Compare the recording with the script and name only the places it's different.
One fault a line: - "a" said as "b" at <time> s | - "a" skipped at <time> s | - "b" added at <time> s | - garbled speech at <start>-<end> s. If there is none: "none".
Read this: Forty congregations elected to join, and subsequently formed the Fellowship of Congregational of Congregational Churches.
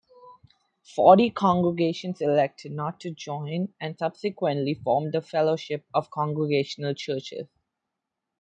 - "not" added at 2.7 s
- "of Congregational" skipped at 6.9 s